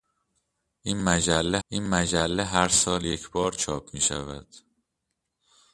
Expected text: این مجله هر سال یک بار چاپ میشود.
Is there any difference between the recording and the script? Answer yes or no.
yes